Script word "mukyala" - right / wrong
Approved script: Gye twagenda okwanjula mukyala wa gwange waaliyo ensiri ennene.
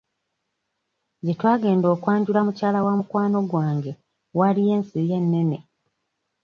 right